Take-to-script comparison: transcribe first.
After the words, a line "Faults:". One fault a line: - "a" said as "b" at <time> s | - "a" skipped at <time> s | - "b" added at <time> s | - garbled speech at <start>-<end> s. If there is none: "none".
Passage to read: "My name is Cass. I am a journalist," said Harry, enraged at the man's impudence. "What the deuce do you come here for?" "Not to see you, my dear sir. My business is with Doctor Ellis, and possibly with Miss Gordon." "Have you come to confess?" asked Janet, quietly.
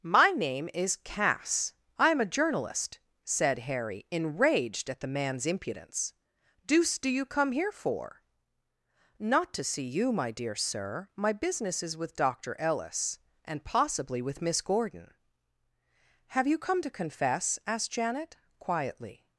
"My name is Cass. I am a journalist," said Harry, enraged at the man's impudence. "deuce do you come here for?" "Not to see you, my dear sir. My business is with Doctor Ellis, and possibly with Miss Gordon." "Have you come to confess?" asked Janet, quietly.
Faults:
- "What the" skipped at 6.1 s